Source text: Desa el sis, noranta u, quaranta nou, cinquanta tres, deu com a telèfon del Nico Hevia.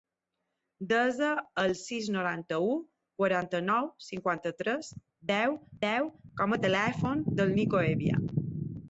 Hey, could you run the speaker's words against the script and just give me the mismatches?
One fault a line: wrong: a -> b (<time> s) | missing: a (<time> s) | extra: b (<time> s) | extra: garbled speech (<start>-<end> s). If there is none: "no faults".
extra: deu (5.9 s)